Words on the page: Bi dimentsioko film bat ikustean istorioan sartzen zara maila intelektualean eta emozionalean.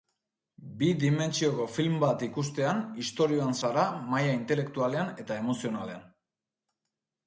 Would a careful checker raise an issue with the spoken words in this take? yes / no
yes